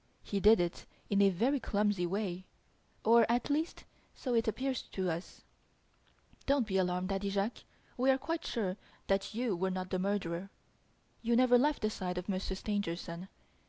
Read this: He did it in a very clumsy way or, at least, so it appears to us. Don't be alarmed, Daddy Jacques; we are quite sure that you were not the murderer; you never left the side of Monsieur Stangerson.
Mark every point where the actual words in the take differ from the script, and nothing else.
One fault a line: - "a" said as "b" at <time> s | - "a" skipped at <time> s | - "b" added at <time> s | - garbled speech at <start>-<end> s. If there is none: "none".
none